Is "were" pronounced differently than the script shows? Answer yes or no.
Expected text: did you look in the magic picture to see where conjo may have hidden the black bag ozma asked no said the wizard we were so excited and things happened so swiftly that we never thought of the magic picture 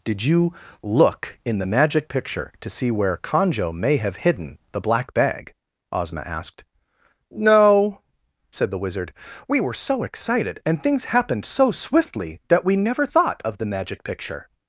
no